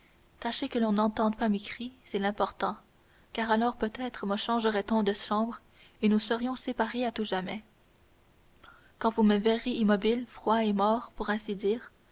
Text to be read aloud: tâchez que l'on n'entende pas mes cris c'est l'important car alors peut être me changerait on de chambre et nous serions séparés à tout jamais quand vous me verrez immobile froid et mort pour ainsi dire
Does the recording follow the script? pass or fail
pass